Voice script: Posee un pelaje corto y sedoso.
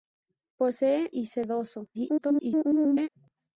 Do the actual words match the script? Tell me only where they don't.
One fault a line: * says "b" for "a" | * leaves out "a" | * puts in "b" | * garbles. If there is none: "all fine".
* leaves out "un pelaje corto"
* garbles